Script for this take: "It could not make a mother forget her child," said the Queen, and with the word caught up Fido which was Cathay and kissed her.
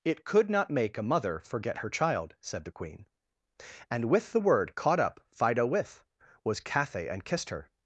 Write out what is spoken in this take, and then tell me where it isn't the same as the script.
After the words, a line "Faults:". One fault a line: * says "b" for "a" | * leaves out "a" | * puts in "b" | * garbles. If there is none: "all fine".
"It could not make a mother forget her child," said the Queen, and with the word caught up Fido with was Cathay and kissed her.
Faults:
* says "with" for "which"